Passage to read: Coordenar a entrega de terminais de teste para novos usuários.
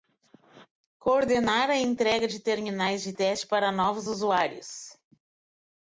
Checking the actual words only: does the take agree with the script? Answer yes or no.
yes